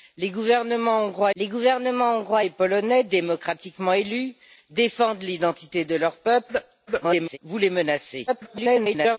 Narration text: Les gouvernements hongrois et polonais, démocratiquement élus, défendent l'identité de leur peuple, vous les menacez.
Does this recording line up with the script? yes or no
no